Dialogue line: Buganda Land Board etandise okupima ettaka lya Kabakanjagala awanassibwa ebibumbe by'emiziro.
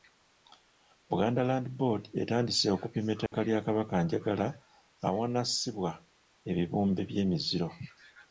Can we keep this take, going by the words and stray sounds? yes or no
no